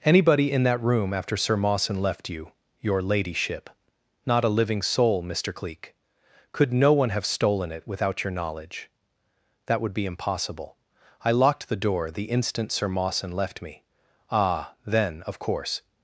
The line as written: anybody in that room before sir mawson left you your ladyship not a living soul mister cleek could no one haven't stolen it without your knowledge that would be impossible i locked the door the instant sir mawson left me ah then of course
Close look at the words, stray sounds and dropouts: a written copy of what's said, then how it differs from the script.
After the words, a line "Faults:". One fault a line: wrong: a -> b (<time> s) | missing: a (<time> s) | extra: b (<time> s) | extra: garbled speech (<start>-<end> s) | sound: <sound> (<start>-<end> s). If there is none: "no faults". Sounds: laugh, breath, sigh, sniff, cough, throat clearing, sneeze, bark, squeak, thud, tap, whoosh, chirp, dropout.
anybody in that room after sir mawson left you your ladyship not a living soul mister cleek could no one have stolen it without your knowledge that would be impossible i locked the door the instant sir mawson left me ah then of course
Faults:
wrong: before -> after (1.1 s)
wrong: haven't -> have (7.1 s)